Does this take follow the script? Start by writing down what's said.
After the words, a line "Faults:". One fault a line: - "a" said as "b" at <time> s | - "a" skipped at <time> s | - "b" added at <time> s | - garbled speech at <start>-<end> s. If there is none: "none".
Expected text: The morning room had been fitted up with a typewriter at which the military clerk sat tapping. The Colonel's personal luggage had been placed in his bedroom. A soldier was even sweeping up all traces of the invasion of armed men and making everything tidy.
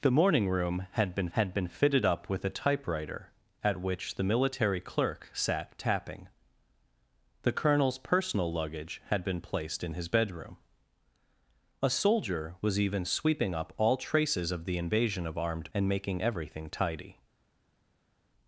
The morning room had been had been fitted up with a typewriter at which the military clerk sat tapping. The Colonel's personal luggage had been placed in his bedroom. A soldier was even sweeping up all traces of the invasion of armed and making everything tidy.
Faults:
- "had been" added at 1.3 s
- "men" skipped at 15.7 s